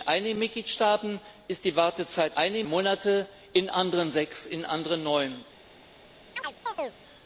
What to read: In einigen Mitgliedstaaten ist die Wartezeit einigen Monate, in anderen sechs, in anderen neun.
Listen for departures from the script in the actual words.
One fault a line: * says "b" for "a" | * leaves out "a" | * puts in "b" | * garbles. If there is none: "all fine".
all fine